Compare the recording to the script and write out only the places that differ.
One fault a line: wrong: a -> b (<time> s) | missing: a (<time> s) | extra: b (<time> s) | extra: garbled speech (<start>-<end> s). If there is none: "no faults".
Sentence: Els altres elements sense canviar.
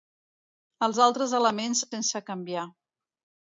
no faults